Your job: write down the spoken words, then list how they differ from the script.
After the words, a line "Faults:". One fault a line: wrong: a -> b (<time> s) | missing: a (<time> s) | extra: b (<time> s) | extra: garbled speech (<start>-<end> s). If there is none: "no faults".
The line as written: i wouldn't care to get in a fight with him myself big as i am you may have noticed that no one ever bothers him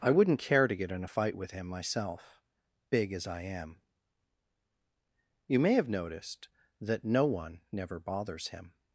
i wouldn't care to get in a fight with him myself big as i am you may have noticed that no one never bothers him
Faults:
wrong: ever -> never (7.7 s)